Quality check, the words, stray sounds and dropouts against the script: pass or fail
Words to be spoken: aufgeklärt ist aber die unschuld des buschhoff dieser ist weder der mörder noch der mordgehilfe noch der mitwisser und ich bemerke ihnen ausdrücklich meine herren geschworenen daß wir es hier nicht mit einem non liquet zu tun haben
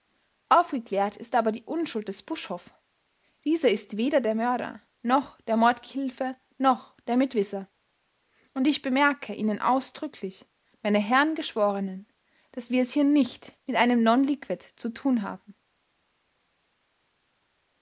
pass